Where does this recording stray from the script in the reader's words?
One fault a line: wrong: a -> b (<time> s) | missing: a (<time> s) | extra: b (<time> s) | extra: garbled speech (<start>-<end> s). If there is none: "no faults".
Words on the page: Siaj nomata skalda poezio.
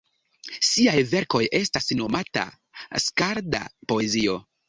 extra: verkoj estas (1.1 s)